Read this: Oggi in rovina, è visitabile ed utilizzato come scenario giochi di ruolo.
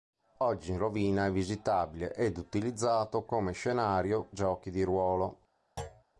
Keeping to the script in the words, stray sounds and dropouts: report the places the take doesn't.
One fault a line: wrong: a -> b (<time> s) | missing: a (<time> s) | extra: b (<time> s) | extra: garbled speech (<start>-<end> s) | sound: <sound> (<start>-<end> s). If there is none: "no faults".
sound: thud (5.8-6.0 s)